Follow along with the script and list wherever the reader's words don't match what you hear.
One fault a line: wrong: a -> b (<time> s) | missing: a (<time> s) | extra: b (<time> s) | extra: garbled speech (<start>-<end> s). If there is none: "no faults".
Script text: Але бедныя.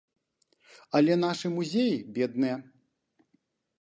extra: нашы музеі (1.2 s)